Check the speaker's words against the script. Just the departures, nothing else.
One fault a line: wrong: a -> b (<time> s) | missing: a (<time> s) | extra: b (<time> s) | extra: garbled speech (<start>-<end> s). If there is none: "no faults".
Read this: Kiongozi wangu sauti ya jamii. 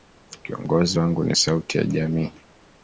extra: ni (1.2 s)